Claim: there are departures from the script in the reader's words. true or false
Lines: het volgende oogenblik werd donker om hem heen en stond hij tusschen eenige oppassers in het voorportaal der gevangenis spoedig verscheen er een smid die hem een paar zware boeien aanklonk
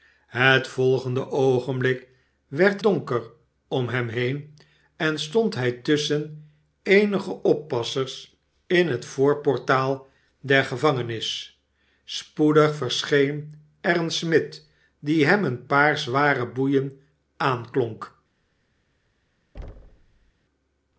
false